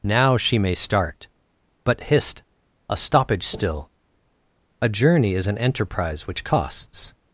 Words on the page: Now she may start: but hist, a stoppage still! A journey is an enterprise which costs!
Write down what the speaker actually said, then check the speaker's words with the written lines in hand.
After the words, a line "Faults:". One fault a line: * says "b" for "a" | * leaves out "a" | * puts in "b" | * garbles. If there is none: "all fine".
Now she may start: but hist, a stoppage still! A journey is an enterprise which costs!
Faults:
all fine